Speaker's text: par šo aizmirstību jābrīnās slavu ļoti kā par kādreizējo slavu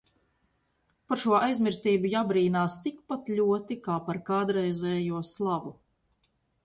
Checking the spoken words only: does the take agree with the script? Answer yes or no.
no